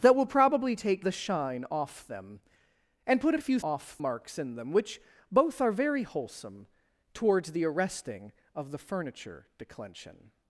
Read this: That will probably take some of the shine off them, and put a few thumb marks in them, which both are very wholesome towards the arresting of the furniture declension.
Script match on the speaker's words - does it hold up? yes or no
no